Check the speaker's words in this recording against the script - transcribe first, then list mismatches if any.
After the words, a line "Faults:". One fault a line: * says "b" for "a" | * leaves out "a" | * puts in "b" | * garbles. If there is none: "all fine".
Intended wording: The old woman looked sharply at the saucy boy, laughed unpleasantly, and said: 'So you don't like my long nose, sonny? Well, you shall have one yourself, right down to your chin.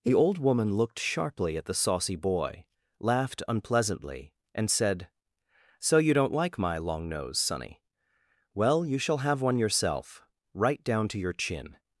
The old woman looked sharply at the saucy boy, laughed unpleasantly, and said: 'So you don't like my long nose, sonny? Well, you shall have one yourself, right down to your chin.
Faults:
all fine